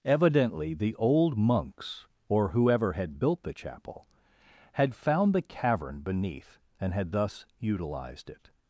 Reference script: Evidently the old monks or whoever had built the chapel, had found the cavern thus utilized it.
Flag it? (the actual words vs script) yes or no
yes